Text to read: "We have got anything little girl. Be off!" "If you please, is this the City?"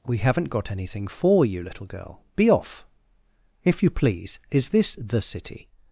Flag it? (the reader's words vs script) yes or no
yes